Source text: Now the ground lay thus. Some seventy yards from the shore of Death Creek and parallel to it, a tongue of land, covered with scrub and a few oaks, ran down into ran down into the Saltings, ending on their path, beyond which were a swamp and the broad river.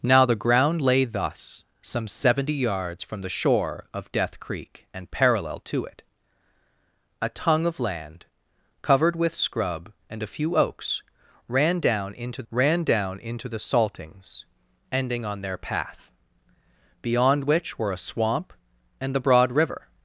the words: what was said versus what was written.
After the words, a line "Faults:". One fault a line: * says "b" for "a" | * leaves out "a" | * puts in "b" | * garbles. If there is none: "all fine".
Now the ground lay thus. Some seventy yards from the shore of Death Creek and parallel to it, a tongue of land, covered with scrub and a few oaks, ran down into ran down into the Saltings, ending on their path, beyond which were a swamp and the broad river.
Faults:
all fine